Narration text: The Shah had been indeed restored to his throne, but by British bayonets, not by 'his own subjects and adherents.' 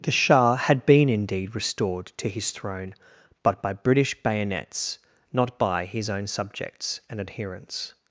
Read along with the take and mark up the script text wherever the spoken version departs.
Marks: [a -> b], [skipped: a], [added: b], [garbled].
The Shah had been indeed restored to his throne, but by British bayonets, not by 'his own subjects and adherents.'